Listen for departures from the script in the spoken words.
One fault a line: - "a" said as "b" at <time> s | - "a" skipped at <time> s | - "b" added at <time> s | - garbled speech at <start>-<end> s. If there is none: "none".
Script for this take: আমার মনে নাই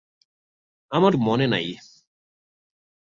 none